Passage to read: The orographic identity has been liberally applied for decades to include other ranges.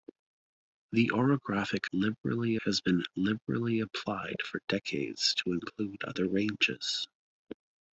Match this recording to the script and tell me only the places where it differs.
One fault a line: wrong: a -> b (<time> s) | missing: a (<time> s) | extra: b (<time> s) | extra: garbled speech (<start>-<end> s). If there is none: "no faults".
wrong: identity -> liberally (1.9 s)